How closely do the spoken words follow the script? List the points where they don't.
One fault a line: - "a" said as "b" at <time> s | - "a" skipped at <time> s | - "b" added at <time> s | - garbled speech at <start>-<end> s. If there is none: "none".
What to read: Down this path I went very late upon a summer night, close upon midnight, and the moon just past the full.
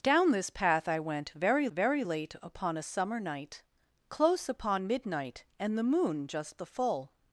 - "very" added at 1.7 s
- "past" skipped at 6.6 s